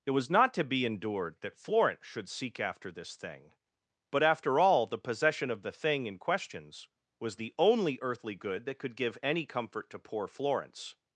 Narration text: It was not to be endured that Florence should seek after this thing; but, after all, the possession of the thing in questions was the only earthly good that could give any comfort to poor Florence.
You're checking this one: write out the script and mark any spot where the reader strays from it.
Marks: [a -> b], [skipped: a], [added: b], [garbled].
It was not to be endured that Florence should seek after this thing; but, after all, the possession of the thing in questions was the only earthly good that could give any comfort to poor Florence.